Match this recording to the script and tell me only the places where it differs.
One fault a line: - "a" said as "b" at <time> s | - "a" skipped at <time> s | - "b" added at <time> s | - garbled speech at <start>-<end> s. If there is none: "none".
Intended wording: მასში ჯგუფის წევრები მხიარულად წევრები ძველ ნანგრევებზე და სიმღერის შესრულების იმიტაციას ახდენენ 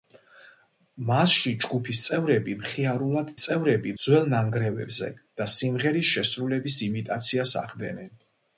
none